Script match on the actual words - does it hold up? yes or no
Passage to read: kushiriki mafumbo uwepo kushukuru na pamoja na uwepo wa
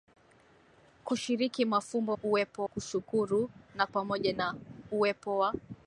yes